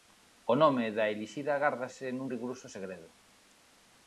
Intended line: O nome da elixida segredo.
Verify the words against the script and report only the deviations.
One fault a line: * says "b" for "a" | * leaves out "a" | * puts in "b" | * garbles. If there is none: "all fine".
* puts in "gárdase nun rigoroso"